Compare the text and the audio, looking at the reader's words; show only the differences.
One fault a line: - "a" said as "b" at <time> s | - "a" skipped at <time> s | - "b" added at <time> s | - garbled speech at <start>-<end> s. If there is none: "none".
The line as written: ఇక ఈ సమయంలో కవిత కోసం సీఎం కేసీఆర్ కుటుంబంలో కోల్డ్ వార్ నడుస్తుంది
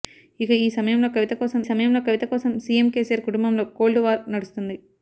- "సమయంలో కవిత కోసం" added at 1.6 s